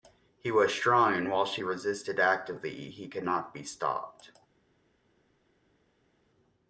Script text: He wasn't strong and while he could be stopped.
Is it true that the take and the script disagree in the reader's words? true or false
true